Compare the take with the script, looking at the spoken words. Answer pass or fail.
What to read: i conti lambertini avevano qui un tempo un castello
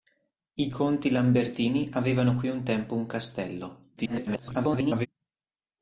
fail